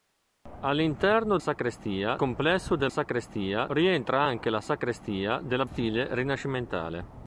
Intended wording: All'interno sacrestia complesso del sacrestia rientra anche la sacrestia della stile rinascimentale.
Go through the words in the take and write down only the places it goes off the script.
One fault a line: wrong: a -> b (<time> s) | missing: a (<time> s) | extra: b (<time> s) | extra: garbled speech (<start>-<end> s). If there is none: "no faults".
no faults